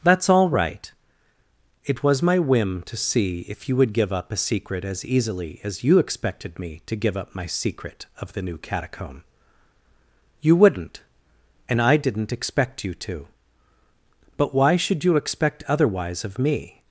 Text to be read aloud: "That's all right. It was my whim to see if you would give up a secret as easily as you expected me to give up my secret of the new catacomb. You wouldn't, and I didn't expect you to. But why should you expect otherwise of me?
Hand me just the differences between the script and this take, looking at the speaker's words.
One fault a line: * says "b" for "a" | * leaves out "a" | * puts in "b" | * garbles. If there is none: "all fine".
all fine